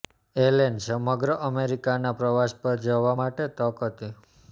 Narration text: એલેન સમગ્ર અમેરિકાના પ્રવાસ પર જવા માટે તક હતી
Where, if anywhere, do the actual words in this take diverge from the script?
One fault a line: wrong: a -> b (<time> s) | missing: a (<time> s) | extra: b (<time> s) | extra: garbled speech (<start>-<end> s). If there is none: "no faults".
no faults